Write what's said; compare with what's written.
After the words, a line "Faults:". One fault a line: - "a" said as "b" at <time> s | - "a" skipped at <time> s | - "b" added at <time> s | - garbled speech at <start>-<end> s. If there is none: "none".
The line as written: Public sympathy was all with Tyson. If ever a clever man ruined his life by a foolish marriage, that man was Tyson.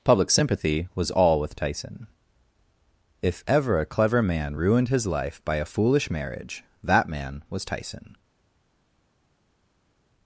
Public sympathy was all with Tyson. If ever a clever man ruined his life by a foolish marriage, that man was Tyson.
Faults:
none